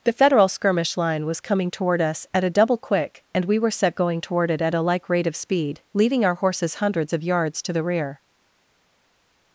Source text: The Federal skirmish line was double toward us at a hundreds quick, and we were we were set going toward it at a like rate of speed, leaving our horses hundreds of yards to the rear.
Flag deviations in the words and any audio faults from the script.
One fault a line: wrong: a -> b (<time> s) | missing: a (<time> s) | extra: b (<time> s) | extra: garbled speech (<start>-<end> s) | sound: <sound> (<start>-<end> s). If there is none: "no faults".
wrong: double -> coming (1.4 s)
wrong: hundreds -> double (2.5 s)
missing: we were (3.7 s)